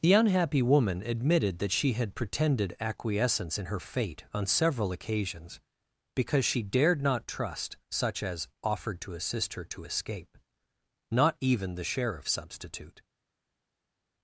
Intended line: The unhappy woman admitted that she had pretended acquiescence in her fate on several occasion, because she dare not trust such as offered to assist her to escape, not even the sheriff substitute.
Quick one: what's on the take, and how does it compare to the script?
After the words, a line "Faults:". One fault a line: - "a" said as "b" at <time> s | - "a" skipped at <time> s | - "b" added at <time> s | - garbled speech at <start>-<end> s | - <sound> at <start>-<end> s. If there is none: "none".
The unhappy woman admitted that she had pretended acquiescence in her fate on several occasions, because she dared not trust such as offered to assist her to escape, not even the sheriff substitute.
Faults:
- "occasion" said as "occasions" at 4.9 s
- "dare" said as "dared" at 6.6 s